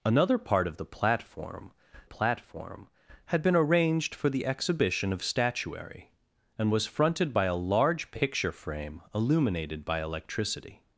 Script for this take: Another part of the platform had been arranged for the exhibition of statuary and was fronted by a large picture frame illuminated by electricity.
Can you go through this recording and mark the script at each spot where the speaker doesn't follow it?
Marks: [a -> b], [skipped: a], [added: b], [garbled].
Another part of the platform [added: platform] had been arranged for the exhibition of statuary and was fronted by a large picture frame illuminated by electricity.